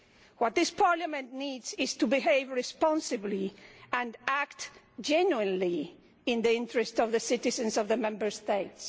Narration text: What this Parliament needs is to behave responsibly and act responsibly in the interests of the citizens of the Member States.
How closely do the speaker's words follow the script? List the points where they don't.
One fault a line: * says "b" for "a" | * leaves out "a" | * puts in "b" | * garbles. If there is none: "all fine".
* says "genuinely" for "responsibly"